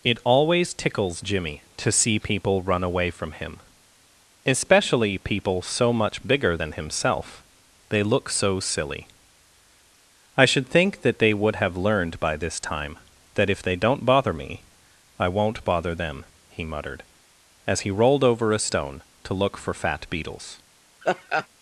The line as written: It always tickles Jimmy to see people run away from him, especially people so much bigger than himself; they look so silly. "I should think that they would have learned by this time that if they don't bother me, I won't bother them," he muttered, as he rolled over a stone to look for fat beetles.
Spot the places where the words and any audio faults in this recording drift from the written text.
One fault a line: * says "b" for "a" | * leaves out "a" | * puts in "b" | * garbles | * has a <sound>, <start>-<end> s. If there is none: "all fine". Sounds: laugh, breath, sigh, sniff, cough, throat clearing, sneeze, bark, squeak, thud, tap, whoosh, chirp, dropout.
* has a laugh, 21.0-21.5 s